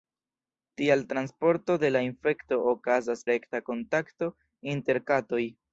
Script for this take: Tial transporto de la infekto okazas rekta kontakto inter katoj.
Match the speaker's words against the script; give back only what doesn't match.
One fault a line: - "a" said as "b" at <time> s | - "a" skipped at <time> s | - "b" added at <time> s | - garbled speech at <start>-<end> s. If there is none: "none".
none